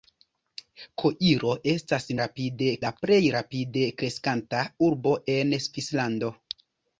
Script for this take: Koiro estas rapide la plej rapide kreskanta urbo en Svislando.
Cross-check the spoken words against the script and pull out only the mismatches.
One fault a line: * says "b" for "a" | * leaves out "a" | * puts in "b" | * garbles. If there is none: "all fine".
all fine